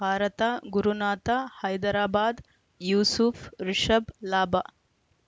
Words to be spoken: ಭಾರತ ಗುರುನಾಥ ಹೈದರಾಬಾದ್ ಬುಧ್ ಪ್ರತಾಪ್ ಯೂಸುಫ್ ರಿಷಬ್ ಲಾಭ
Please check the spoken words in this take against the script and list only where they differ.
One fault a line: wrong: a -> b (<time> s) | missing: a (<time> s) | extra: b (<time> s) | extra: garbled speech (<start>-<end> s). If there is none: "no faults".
missing: ಬುಧ್ ಪ್ರತಾಪ್ (2.4 s)